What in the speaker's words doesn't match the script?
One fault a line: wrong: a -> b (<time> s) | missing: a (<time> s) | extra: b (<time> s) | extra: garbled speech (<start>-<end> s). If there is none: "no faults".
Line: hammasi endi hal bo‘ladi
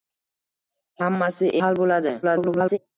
missing: endi (1.5 s)
extra: garbled speech (2.2-2.8 s)